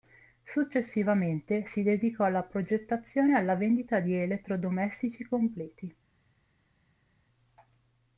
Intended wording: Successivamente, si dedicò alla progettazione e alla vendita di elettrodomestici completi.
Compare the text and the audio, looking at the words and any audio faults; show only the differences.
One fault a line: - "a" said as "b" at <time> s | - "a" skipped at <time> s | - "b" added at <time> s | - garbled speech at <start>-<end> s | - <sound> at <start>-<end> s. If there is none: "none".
none